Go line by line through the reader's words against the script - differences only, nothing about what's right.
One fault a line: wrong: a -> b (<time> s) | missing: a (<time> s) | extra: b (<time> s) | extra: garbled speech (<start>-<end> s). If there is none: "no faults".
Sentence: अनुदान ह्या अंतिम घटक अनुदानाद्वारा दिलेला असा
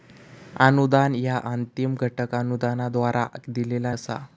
no faults